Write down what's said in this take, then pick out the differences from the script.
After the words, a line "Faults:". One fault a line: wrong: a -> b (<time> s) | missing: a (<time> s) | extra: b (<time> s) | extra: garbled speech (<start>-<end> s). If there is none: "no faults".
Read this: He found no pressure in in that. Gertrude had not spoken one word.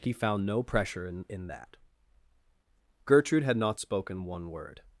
He found no pressure in in that. Gertrude had not spoken one word.
Faults:
no faults